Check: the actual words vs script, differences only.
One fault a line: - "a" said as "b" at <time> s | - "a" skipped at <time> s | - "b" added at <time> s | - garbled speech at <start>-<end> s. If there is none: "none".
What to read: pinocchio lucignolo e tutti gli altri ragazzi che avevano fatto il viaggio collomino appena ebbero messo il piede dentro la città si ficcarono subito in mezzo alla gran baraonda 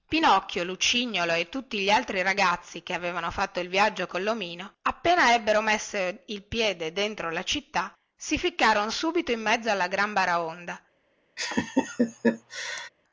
none